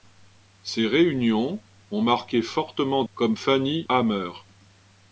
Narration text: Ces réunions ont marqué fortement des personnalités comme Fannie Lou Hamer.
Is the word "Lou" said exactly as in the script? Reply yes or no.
no